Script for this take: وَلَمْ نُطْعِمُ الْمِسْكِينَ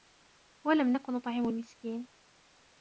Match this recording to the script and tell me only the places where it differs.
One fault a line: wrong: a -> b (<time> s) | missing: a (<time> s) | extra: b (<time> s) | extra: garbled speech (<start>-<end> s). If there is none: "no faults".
extra: نَكُ (0.9 s)